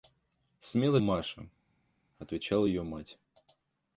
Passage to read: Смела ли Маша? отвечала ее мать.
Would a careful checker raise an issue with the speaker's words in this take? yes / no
yes